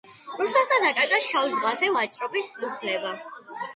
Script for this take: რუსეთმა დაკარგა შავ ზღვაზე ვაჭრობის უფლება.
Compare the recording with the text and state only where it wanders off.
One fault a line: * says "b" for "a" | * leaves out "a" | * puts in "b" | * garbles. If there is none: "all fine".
all fine